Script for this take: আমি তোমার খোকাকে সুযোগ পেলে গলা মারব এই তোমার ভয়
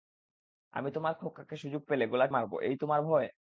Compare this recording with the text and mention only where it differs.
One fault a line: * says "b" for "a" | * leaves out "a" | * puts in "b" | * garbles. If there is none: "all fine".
all fine